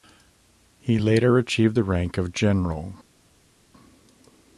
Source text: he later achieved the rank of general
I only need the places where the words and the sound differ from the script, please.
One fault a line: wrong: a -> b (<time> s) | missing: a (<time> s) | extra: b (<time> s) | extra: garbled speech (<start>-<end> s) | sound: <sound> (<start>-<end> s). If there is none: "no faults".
no faults